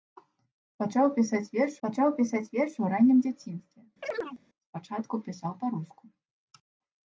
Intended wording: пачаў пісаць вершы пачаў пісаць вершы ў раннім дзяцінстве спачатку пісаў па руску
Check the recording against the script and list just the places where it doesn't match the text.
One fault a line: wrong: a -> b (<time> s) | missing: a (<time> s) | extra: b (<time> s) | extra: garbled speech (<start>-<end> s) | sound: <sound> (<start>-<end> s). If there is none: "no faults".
sound: chirp (4.0-4.4 s)